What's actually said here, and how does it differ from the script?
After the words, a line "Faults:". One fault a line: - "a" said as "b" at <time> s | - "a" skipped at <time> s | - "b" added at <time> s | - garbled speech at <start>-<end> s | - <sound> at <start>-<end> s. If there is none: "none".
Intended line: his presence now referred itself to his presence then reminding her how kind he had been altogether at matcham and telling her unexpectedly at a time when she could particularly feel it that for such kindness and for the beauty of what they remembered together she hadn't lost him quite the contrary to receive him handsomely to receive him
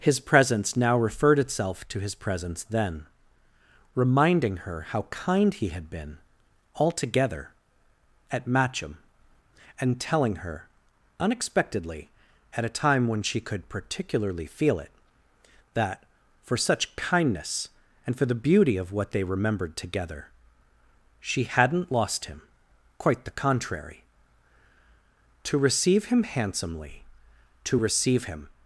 his presence now referred itself to his presence then reminding her how kind he had been altogether at matcham and telling her unexpectedly at a time when she could particularly feel it that for such kindness and for the beauty of what they remembered together she hadn't lost him quite the contrary to receive him handsomely to receive him
Faults:
none